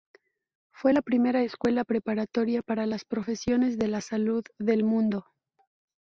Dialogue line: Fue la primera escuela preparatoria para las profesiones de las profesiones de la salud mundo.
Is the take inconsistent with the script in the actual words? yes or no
yes